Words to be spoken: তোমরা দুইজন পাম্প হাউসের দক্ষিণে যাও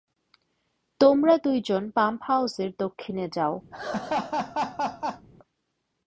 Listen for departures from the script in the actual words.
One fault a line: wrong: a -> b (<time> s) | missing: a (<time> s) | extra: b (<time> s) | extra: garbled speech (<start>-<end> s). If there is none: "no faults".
no faults